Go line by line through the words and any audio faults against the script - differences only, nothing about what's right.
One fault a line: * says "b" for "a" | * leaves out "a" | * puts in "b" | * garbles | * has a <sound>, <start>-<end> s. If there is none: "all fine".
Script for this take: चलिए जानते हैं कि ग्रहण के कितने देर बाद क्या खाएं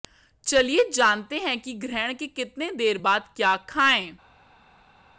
all fine